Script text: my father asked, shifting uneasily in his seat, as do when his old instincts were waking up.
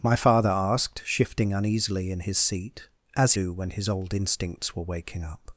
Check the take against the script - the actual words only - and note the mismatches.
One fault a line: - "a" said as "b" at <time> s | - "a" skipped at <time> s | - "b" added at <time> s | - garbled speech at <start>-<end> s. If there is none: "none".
none